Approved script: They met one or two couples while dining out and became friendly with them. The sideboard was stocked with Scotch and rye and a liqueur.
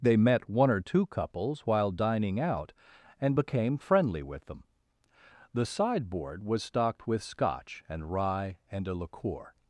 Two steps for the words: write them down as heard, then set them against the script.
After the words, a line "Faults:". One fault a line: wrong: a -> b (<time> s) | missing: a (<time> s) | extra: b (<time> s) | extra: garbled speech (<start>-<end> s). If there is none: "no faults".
They met one or two couples while dining out and became friendly with them. The sideboard was stocked with Scotch and rye and a liqueur.
Faults:
no faults